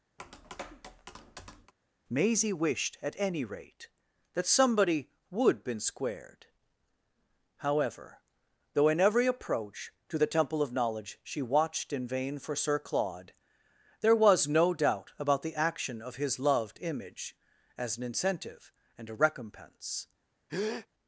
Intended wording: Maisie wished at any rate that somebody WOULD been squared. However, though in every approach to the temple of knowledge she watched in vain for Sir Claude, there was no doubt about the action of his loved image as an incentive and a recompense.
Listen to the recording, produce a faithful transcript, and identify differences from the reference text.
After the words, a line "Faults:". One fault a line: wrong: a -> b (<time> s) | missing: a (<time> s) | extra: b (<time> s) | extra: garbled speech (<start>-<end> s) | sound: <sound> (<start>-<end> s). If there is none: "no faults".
Maisie wished at any rate that somebody WOULD been squared. However, though in every approach to the temple of knowledge she watched in vain for Sir Claude, there was no doubt about the action of his loved image as an incentive and a recompense.
Faults:
sound: tap (0.2-1.7 s)
sound: breath (20.5-20.9 s)